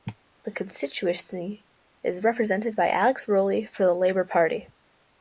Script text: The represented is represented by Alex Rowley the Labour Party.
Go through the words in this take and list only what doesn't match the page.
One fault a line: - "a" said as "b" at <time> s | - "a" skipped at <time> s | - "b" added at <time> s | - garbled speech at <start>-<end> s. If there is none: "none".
- "represented" said as "constituency" at 0.5 s
- "for" added at 3.7 s